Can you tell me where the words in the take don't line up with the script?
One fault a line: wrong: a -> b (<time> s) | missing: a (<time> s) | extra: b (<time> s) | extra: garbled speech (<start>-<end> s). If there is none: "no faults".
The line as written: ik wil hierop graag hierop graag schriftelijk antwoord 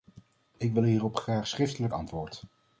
missing: hierop graag (1.5 s)